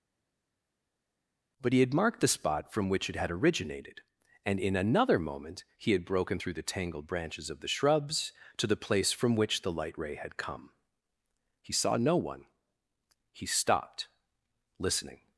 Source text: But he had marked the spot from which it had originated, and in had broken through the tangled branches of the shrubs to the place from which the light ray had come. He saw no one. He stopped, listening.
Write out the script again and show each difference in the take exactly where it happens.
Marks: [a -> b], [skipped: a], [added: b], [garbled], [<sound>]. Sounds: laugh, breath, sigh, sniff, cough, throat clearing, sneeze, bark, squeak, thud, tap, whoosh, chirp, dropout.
But he had marked the spot from which it had originated, and in [added: another moment he] had broken through the tangled branches of the shrubs to the place from which the light ray had come. He saw no one. He stopped, listening.